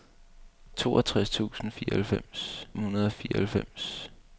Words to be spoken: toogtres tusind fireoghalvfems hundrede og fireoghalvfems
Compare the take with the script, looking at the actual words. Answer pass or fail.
pass